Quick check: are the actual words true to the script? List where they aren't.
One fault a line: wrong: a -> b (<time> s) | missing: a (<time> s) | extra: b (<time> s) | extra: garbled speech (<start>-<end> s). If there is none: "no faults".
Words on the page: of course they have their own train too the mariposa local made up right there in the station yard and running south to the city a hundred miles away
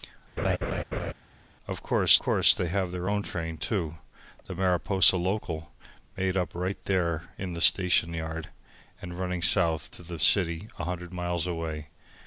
extra: course (2.2 s)